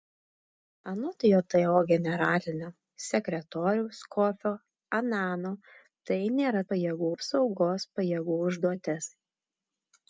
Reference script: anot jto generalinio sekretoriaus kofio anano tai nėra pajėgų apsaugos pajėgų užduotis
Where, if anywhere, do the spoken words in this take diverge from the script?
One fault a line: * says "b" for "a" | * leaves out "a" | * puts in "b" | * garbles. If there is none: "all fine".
all fine